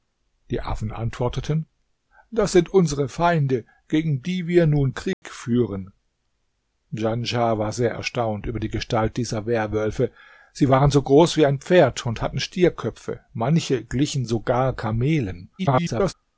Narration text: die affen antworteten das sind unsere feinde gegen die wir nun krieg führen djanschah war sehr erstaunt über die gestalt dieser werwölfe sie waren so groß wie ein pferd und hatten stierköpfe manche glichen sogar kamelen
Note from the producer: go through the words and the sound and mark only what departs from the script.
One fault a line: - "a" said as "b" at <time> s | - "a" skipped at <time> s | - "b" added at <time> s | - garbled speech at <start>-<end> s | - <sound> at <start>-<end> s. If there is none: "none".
- dropout at 5.1-5.2 s
- garbled speech at 15.6-16.1 s